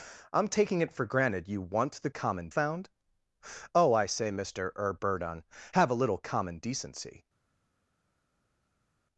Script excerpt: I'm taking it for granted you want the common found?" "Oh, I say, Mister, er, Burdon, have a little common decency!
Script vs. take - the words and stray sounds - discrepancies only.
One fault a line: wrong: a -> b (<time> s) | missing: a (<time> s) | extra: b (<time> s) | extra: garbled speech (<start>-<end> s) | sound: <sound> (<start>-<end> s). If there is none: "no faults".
no faults